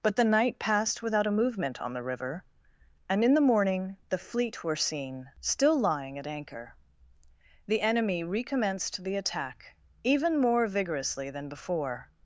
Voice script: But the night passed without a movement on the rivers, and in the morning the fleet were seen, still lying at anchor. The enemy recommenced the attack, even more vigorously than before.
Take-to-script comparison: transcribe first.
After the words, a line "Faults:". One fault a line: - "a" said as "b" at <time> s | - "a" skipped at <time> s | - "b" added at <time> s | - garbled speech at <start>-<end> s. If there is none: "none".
But the night passed without a movement on the river, and in the morning the fleet were seen, still lying at anchor. The enemy recommenced the attack, even more vigorously than before.
Faults:
- "rivers" said as "river" at 2.0 s